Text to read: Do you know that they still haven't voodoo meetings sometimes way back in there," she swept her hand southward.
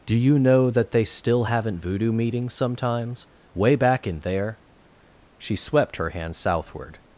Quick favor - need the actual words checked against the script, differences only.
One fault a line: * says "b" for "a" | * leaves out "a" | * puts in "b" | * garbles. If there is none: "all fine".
all fine